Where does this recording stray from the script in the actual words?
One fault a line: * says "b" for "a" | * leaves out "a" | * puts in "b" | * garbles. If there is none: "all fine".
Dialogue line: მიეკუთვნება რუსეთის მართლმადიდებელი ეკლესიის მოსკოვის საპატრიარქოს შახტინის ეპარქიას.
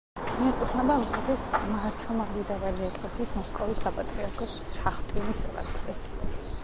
all fine